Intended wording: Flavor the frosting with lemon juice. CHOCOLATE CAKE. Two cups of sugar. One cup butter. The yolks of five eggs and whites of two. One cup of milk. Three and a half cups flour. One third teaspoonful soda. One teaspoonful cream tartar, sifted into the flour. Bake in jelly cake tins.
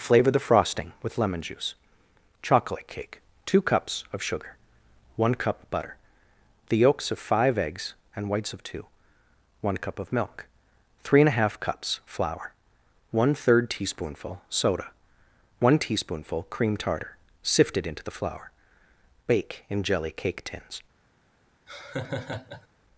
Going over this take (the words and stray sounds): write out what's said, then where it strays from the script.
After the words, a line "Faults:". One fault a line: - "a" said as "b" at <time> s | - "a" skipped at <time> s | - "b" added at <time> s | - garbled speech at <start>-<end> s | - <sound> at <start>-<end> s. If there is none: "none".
Flavor the frosting with lemon juice. CHOCOLATE CAKE. Two cups of sugar. One cup butter. The yolks of five eggs and whites of two. One cup of milk. Three and a half cups flour. One third teaspoonful soda. One teaspoonful cream tartar, sifted into the flour. Bake in jelly cake tins.
Faults:
- laugh at 21.7-22.7 s